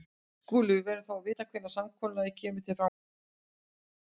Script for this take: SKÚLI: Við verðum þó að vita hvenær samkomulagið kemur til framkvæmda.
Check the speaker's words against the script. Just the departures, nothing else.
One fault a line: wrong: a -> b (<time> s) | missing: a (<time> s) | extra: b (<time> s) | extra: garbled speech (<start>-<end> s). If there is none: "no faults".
no faults